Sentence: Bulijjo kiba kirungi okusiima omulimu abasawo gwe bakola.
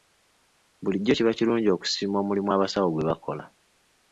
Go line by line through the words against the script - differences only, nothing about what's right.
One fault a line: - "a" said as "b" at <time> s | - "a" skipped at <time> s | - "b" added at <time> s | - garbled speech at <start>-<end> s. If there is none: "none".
none